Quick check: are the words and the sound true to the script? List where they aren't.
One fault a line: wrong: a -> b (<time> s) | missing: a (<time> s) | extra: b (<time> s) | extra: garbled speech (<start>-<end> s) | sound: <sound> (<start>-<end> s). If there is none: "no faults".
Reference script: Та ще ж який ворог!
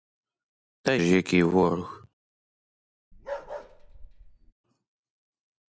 missing: ще (1.0 s)
sound: bark (3.1-4.5 s)